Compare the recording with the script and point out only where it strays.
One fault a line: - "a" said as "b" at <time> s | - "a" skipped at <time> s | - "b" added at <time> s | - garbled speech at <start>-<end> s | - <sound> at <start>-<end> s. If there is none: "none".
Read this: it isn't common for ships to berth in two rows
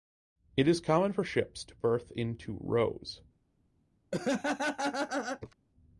- "isn't" said as "is" at 0.7 s
- laugh at 4.1-5.5 s